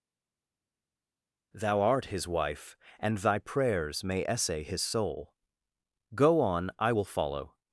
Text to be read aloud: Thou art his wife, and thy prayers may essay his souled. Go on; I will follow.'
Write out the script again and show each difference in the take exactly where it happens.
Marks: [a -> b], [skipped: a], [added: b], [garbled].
Thou art his wife, and thy prayers may essay his [souled. -> soul] Go on; I will follow.'